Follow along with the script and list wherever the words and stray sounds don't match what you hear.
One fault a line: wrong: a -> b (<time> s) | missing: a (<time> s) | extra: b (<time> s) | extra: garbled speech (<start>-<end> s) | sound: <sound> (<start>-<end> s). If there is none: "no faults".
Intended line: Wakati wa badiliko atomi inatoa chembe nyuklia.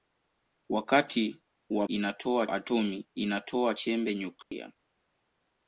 wrong: badiliko -> inatoa (1.9 s)
sound: dropout (4.4-4.5 s)